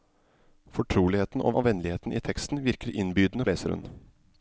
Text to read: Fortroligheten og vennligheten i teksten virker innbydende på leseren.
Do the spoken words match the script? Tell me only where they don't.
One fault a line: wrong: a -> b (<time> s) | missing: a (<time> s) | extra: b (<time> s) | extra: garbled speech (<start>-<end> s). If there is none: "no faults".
extra: og (1.5 s)
missing: på (3.4 s)